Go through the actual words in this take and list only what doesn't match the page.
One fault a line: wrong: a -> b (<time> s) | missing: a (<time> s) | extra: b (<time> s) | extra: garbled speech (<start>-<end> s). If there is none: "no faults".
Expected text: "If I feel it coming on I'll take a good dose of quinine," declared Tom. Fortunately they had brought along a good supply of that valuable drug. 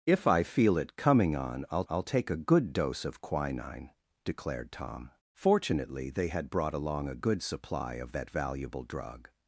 extra: I'll (1.9 s)